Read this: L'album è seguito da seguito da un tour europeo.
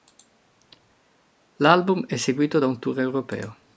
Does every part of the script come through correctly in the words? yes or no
no